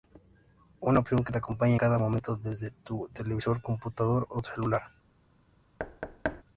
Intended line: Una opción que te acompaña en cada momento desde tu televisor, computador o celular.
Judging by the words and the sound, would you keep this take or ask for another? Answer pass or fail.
fail